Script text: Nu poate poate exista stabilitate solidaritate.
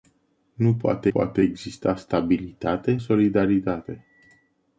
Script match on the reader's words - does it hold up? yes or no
yes